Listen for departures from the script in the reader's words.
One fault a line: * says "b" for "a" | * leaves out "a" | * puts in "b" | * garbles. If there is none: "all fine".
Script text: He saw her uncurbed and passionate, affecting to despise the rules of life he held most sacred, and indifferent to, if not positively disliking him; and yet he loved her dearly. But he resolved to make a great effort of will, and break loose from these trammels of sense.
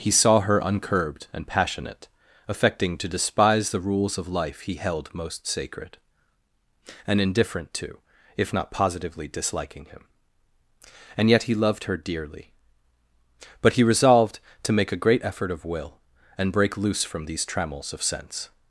all fine